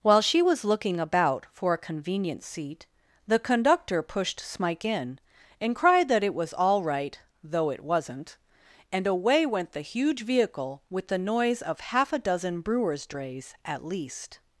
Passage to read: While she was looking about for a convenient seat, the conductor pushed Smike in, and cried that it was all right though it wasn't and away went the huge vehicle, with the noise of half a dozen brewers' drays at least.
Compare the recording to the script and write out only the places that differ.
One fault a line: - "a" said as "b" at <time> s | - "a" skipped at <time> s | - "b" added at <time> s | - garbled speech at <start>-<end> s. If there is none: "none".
none